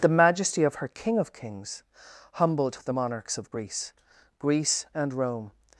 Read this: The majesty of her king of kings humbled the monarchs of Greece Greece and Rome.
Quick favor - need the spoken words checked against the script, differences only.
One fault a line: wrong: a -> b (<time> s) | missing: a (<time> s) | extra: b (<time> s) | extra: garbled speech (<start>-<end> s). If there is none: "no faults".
no faults